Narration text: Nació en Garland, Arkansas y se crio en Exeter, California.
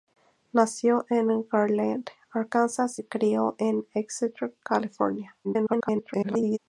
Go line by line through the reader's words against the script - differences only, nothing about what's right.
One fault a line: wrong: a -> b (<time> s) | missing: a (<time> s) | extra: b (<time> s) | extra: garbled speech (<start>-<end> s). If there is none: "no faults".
missing: y (3.0 s)
extra: garbled speech (5.4-6.6 s)